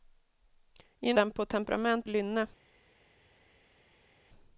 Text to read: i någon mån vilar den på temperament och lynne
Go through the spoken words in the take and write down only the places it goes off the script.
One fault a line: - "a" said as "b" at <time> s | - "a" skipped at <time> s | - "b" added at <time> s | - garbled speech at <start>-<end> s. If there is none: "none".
- "någon mån vilar" skipped at 1.1 s
- "och" skipped at 2.1 s